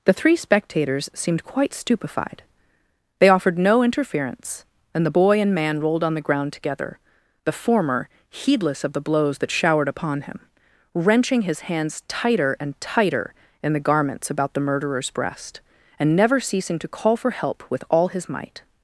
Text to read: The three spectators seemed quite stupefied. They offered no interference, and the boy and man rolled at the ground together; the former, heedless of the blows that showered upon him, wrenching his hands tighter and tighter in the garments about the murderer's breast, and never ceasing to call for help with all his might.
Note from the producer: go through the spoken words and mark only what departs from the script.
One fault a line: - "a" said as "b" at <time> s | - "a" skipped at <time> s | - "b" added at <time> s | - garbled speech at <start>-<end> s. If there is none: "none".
- "at" said as "on" at 6.0 s